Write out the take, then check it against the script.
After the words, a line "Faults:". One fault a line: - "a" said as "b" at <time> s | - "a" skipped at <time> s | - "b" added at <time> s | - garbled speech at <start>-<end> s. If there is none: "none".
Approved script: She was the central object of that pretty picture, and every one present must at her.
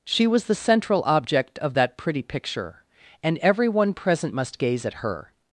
She was the central object of that pretty picture, and every one present must gaze at her.
Faults:
- "gaze" added at 4.6 s